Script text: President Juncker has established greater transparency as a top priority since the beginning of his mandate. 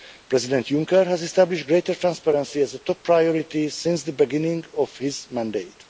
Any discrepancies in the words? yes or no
no